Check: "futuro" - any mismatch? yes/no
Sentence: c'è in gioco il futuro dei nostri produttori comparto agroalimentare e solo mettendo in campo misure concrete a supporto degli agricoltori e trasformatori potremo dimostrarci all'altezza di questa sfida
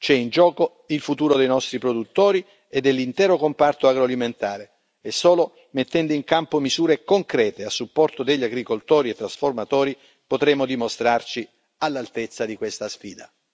no